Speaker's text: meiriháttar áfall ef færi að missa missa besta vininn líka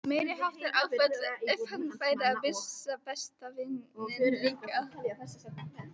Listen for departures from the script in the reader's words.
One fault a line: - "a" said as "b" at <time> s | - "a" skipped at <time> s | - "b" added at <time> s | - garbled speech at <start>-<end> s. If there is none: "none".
- "hann" added at 1.7 s
- "missa" skipped at 3.0 s